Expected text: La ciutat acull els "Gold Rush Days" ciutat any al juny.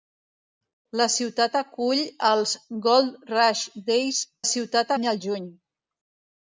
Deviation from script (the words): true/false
false